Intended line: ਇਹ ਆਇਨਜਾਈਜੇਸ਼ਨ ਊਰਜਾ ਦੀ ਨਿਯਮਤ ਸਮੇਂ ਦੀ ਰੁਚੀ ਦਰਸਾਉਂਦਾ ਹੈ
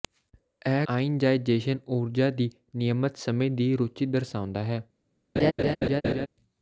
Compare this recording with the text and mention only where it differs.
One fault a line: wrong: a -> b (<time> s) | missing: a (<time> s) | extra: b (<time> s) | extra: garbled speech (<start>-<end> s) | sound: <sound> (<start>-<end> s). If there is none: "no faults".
sound: laugh (5.4-6.3 s)